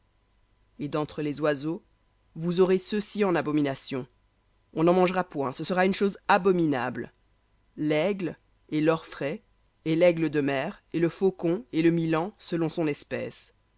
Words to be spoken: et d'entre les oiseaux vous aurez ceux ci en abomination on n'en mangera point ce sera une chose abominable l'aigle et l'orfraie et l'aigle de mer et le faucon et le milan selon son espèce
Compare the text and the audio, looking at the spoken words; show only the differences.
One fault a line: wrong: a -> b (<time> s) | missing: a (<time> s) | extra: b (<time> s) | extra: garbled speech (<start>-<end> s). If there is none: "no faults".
no faults